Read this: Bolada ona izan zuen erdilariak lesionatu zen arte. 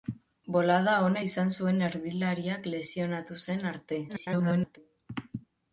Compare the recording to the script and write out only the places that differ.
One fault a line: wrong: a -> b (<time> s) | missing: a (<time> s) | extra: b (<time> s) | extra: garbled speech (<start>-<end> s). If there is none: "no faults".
extra: garbled speech (4.1-4.8 s)